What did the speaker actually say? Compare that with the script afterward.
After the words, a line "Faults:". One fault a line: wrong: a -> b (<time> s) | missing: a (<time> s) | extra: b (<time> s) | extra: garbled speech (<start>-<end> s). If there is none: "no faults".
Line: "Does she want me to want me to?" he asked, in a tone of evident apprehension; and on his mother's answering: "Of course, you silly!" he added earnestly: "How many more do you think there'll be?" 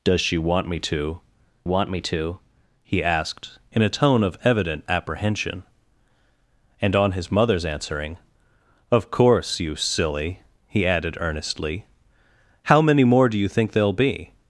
"Does she want me to want me to?" he asked, in a tone of evident apprehension; and on his mother's answering: "Of course, you silly!" he added earnestly: "How many more do you think there'll be?"
Faults:
no faults